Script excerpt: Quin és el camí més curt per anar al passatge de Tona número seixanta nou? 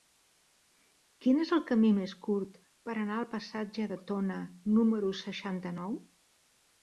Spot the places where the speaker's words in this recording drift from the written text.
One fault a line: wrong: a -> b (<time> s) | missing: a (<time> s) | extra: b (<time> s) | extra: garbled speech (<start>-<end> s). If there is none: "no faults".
no faults